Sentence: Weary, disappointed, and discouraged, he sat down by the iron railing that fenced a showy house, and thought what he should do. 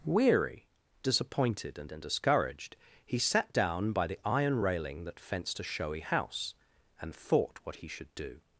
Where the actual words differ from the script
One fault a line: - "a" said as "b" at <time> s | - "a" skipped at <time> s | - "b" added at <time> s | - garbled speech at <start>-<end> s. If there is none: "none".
- "and" added at 1.9 s